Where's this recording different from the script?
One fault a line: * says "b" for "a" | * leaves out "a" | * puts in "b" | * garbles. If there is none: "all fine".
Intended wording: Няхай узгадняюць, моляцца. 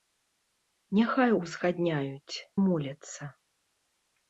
all fine